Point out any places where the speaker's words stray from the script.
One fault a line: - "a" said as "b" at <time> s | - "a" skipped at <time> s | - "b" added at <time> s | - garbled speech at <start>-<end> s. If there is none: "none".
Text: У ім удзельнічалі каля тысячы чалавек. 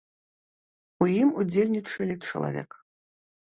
- "каля тысячы" skipped at 2.1 s